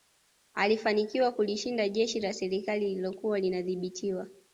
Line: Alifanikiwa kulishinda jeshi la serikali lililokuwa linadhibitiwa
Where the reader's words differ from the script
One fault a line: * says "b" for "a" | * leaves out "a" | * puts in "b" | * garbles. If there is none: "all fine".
all fine